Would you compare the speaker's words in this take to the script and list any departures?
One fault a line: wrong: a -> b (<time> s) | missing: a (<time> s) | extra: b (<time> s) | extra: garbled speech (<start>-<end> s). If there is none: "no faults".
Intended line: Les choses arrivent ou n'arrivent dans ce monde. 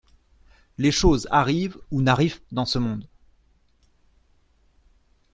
no faults